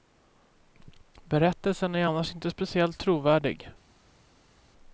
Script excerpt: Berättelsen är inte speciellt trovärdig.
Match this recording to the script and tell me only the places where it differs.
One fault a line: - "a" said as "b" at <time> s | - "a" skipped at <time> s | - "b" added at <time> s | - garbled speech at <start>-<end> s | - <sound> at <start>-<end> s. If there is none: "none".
- "annars" added at 2.0 s